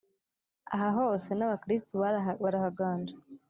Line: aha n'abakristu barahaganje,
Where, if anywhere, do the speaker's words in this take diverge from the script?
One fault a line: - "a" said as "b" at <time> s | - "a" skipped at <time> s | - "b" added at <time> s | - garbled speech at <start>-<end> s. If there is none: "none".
- "hose" added at 1.0 s